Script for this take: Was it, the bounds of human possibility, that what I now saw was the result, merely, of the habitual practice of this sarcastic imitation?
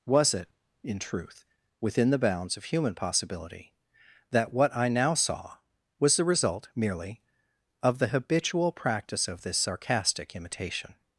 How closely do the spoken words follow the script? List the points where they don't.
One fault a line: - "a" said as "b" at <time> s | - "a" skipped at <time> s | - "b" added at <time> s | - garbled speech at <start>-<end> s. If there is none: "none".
- "in truth within" added at 0.8 s